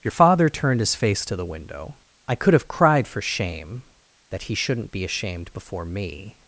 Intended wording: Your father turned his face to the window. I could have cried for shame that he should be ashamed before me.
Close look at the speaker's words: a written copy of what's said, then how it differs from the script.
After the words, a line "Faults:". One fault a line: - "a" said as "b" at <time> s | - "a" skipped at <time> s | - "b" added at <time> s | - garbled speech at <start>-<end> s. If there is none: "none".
Your father turned his face to the window. I could have cried for shame that he shouldn't be ashamed before me.
Faults:
- "should" said as "shouldn't" at 4.5 s